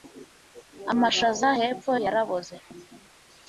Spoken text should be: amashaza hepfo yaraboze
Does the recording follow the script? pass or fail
pass